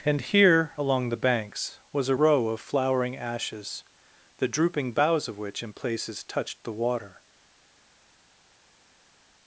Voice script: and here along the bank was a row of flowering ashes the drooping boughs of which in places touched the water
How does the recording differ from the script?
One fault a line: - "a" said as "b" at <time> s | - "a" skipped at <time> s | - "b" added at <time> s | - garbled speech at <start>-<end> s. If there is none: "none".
- "bank" said as "banks" at 1.2 s